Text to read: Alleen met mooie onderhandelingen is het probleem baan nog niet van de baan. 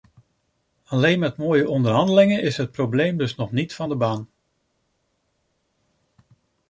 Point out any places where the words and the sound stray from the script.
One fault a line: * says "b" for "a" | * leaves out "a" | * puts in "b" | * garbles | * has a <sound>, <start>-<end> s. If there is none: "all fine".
* says "dus" for "baan"